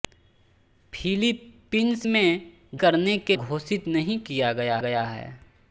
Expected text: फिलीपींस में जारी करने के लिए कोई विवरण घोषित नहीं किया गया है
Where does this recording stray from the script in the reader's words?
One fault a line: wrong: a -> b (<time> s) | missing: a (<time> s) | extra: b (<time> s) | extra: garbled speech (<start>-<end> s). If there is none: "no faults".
missing: जारी (2.5 s)
missing: लिए कोई विवरण (3.4 s)
extra: गया (4.8 s)